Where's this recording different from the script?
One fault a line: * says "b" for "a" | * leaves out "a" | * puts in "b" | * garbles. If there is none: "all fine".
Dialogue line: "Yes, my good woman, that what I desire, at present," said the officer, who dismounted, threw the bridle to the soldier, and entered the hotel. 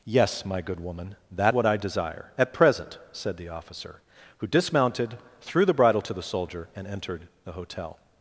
all fine